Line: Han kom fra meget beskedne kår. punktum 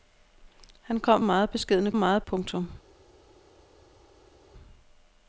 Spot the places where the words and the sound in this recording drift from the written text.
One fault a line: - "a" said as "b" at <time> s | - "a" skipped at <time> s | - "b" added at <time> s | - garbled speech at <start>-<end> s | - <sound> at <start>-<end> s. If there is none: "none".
- "fra" skipped at 1.2 s
- "kår" said as "meget" at 1.9 s